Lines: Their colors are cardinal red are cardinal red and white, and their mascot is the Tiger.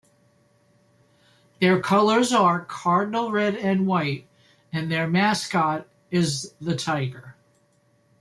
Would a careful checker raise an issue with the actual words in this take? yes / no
yes